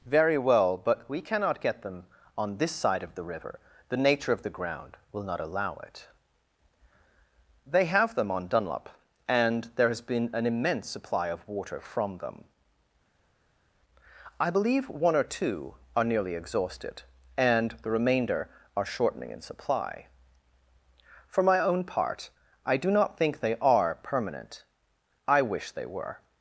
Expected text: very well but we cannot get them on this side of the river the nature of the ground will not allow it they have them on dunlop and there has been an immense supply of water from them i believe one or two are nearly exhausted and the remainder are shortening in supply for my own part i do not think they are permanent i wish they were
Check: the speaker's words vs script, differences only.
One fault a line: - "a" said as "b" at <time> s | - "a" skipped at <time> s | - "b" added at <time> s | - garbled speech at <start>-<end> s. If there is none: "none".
none